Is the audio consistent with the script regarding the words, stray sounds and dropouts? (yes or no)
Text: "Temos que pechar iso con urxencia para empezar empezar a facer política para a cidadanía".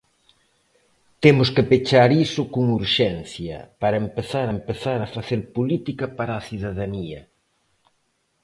yes